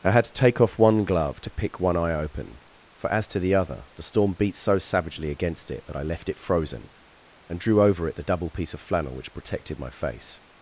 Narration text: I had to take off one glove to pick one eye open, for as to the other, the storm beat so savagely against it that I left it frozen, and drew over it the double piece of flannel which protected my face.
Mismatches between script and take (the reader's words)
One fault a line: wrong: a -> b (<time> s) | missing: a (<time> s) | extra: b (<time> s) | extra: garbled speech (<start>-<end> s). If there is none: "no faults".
no faults